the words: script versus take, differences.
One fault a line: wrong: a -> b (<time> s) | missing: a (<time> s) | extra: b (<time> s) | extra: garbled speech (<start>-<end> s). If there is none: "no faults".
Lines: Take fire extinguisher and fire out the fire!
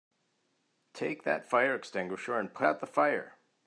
extra: that (1.2 s)
wrong: fire -> put (2.5 s)